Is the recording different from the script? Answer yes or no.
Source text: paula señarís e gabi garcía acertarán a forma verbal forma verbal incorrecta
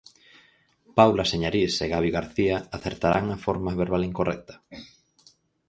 yes